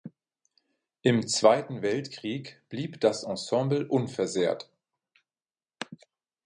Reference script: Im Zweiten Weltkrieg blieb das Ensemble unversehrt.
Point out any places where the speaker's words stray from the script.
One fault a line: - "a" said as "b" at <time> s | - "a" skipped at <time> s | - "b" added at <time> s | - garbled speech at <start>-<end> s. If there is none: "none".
none